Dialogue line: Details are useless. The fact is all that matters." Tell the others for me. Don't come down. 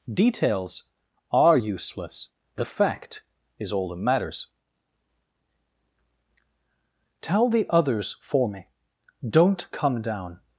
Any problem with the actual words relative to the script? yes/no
no